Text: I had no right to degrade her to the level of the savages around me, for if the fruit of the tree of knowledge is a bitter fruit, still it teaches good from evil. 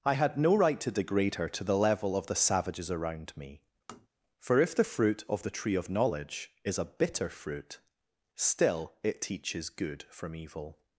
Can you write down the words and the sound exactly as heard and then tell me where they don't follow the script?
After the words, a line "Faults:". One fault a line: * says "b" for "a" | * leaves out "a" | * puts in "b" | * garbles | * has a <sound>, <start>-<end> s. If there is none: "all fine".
I had no right to degrade her to the level of the savages around me, for if the fruit of the tree of knowledge is a bitter fruit, still it teaches good from evil.
Faults:
* has a tap, 3.9-4.1 s